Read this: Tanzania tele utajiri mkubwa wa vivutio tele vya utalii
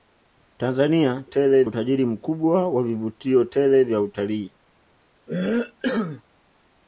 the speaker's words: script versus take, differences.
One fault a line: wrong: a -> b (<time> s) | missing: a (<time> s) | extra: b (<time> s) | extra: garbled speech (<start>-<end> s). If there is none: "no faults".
no faults